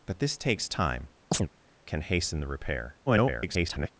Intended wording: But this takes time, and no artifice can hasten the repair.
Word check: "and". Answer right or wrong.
wrong